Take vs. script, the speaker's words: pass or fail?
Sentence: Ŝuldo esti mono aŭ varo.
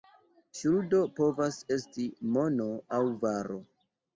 fail